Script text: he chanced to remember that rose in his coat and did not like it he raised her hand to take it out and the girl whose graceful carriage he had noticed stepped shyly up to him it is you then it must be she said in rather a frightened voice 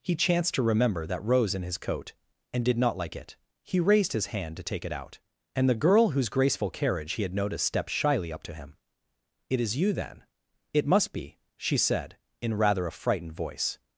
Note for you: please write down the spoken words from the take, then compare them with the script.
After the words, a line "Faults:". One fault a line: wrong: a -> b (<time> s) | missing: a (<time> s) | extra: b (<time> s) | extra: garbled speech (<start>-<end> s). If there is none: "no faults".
he chanced to remember that rose in his coat and did not like it he raised his hand to take it out and the girl whose graceful carriage he had noticed stepped shyly up to him it is you then it must be she said in rather a frightened voice
Faults:
wrong: her -> his (4.1 s)